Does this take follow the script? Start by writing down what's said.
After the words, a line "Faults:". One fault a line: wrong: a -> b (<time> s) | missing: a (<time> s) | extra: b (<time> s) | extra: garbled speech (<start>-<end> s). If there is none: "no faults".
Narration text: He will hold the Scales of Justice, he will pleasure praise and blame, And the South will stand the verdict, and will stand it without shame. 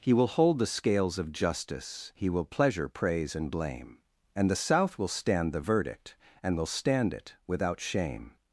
He will hold the Scales of Justice, he will pleasure praise and blame, And the South will stand the verdict, and will stand it without shame.
Faults:
no faults